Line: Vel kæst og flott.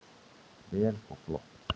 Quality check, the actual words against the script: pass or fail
fail